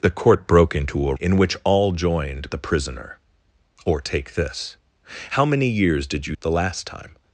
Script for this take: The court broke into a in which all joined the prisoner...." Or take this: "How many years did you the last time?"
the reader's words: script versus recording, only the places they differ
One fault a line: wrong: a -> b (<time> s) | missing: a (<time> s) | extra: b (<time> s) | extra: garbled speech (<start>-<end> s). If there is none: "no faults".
no faults